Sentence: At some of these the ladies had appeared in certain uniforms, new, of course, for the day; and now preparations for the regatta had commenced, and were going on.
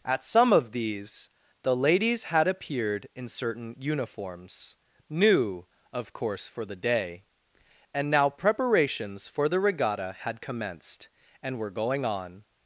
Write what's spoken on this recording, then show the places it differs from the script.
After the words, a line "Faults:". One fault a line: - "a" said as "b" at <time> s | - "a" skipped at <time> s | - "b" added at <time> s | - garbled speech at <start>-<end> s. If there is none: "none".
At some of these the ladies had appeared in certain uniforms, new, of course, for the day; and now preparations for the regatta had commenced, and were going on.
Faults:
none